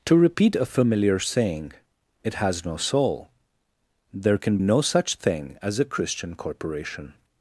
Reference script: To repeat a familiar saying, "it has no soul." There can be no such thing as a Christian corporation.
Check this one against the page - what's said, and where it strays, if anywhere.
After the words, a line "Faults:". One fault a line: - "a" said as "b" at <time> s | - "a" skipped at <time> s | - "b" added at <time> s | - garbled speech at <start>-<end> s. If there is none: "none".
To repeat a familiar saying, "it has no soul." There can no such thing as a Christian corporation.
Faults:
- "be" skipped at 4.6 s